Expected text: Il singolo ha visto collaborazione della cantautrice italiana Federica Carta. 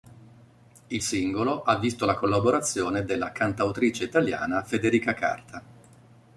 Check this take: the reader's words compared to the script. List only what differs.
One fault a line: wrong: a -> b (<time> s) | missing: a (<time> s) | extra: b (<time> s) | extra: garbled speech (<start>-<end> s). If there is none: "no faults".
extra: la (2.0 s)